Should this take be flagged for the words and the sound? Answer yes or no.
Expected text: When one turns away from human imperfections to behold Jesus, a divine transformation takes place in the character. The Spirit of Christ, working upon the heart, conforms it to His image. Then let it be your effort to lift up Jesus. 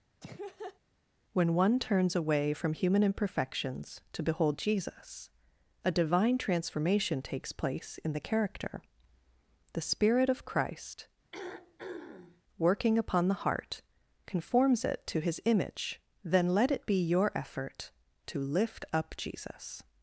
yes